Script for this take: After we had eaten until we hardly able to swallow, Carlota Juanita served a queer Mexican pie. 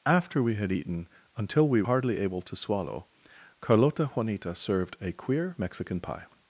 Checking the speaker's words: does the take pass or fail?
pass